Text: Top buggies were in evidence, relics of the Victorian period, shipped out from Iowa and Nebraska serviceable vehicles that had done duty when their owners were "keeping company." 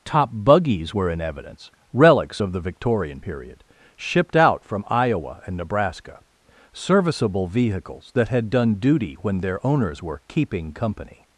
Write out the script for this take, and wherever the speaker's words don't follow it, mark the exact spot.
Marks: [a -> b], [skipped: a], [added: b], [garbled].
Top buggies were in evidence, relics of the Victorian period, shipped out from Iowa and Nebraska serviceable vehicles that had done duty when their owners were "keeping company."